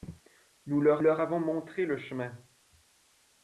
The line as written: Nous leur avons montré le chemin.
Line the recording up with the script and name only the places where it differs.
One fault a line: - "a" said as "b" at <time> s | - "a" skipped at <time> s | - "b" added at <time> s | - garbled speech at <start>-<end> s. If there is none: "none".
- "leur" added at 1.0 s